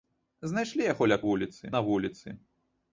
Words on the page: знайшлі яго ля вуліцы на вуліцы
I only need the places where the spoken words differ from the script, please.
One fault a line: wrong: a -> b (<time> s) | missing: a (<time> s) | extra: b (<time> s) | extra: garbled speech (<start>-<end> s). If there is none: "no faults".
no faults